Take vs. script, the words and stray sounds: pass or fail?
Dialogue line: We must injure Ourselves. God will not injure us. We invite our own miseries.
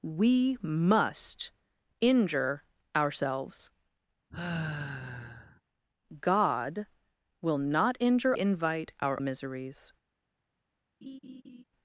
fail